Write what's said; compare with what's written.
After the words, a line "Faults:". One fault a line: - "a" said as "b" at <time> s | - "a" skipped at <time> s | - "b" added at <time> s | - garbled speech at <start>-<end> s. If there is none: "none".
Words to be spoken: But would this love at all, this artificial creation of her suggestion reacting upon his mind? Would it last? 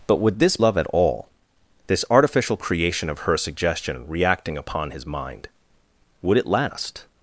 But would this love at all, this artificial creation of her suggestion reacting upon his mind? Would it last?
Faults:
none